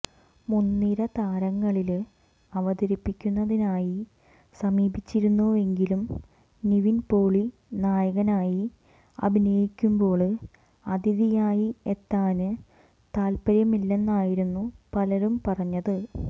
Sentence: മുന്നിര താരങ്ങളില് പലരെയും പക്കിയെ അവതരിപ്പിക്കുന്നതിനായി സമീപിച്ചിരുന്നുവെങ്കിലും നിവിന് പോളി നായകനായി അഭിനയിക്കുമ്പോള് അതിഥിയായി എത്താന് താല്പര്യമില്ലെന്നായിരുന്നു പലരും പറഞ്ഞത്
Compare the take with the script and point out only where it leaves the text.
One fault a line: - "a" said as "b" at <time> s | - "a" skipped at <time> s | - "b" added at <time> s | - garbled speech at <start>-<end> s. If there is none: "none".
- "പലരെയും പക്കിയെ" skipped at 2.0 s